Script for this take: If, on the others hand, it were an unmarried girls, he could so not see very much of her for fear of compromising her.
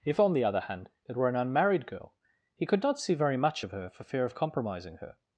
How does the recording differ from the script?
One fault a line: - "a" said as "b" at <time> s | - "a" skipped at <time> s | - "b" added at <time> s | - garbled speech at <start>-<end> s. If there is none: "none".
- "others" said as "other" at 0.4 s
- "girls" said as "girl" at 1.9 s
- "so" skipped at 2.8 s